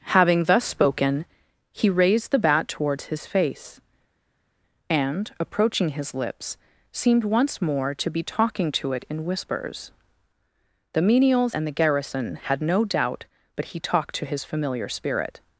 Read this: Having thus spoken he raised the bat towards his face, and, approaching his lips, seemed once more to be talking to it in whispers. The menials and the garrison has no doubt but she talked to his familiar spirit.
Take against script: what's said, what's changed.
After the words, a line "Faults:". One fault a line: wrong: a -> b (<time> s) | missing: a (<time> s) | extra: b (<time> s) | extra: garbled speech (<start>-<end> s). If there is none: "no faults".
Having thus spoken he raised the bat towards his face, and, approaching his lips, seemed once more to be talking to it in whispers. The menials and the garrison had no doubt but he talked to his familiar spirit.
Faults:
wrong: has -> had (12.4 s)
wrong: she -> he (13.7 s)